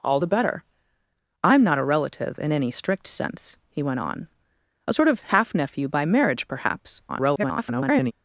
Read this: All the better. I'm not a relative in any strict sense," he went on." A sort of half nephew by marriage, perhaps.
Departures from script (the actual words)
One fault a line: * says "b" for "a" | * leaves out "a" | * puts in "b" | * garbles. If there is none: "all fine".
* garbles